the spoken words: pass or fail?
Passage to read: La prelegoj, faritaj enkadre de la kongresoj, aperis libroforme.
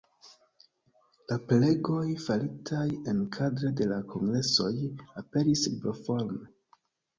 pass